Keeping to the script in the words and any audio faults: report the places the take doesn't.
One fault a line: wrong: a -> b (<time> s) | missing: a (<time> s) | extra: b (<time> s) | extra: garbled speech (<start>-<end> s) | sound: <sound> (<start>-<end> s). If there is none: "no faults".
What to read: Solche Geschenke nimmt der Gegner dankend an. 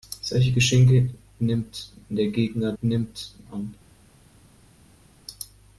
wrong: dankend -> nimmt (2.8 s)